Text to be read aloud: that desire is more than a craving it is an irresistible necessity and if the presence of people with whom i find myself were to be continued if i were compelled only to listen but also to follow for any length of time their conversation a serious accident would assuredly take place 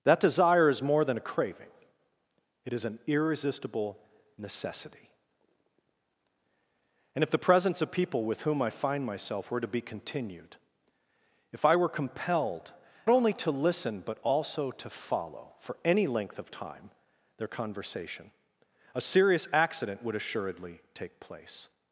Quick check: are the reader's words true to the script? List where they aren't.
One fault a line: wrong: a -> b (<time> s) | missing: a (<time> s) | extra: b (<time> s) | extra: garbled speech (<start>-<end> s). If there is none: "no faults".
no faults